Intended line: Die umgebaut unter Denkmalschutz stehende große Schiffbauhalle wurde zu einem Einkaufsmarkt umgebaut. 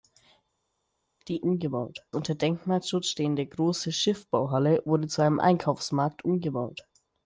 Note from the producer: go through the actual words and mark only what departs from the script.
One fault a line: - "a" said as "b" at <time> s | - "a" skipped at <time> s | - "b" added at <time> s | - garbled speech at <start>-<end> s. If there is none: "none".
none